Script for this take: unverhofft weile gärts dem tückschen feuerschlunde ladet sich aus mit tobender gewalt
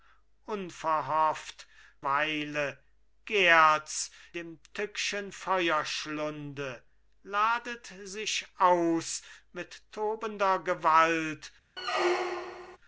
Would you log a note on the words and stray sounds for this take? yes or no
yes